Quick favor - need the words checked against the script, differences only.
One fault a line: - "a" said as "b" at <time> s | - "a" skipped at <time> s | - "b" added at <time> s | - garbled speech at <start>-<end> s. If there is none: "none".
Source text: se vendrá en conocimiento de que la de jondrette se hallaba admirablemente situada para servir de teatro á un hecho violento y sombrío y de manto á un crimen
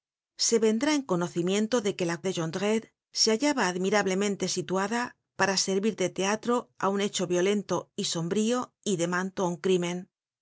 none